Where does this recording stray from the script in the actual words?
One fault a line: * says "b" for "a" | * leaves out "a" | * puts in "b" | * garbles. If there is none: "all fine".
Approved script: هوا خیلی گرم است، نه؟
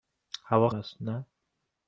* leaves out "خیلی گرم"